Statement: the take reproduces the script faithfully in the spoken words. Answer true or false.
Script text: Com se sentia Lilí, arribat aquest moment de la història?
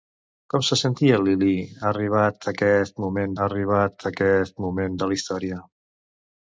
false